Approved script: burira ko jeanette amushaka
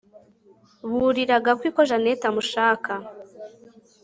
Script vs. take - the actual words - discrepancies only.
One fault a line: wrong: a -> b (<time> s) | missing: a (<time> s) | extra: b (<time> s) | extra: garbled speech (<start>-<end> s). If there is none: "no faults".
extra: gakwi (1.4 s)